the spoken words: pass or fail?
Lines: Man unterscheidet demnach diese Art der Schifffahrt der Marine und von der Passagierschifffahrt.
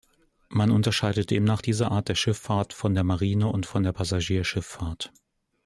fail